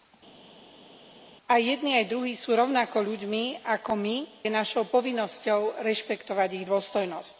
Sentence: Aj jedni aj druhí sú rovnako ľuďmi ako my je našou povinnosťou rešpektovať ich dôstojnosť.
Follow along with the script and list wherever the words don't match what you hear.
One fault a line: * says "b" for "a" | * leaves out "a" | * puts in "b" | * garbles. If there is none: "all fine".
all fine